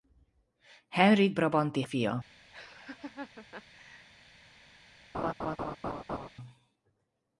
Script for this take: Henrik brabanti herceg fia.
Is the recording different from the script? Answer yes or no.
yes